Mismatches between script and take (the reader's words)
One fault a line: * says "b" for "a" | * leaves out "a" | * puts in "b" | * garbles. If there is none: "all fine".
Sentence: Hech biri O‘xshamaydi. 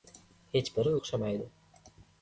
all fine